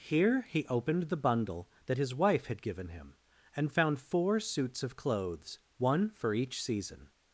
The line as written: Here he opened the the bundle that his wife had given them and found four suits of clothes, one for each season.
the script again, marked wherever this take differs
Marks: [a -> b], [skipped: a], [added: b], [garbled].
Here he opened the [skipped: the] bundle that his wife had given [them -> him] and found four suits of clothes, one for each season.